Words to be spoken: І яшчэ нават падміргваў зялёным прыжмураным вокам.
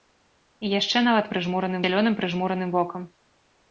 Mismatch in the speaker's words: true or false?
true